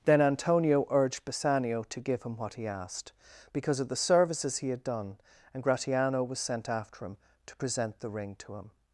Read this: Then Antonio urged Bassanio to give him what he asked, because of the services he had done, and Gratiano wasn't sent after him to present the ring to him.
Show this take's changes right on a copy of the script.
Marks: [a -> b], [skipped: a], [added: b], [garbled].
Then Antonio urged Bassanio to give him what he asked, because of the services he had done, and Gratiano [wasn't -> was] sent after him to present the ring to him.